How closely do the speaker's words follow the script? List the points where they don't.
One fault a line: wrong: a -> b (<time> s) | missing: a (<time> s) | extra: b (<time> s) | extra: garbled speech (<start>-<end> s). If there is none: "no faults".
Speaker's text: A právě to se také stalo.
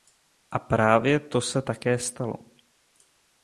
no faults